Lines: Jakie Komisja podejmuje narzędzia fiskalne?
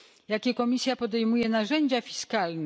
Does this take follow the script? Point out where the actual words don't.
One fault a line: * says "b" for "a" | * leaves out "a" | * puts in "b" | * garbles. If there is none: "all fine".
all fine